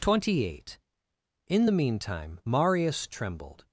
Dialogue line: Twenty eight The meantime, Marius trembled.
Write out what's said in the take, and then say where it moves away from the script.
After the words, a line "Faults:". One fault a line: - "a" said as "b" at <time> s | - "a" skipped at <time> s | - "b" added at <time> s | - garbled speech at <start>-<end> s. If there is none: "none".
Twenty eight In the meantime, Marius trembled.
Faults:
- "In" added at 1.5 s